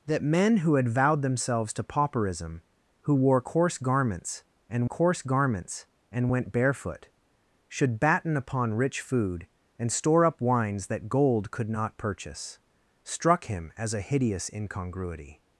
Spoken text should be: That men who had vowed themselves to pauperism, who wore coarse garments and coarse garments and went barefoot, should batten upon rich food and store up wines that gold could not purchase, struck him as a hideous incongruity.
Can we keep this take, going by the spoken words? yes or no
yes